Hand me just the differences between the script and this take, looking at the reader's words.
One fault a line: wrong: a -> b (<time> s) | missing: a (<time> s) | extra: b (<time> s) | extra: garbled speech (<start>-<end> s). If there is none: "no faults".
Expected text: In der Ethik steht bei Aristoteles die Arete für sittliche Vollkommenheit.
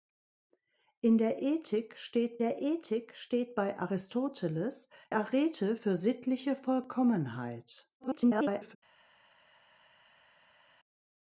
extra: der Ethik steht (2.4 s)
missing: die (4.9 s)
extra: garbled speech (8.0-8.8 s)